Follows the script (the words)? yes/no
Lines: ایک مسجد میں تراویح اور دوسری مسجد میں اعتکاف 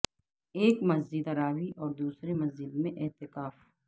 no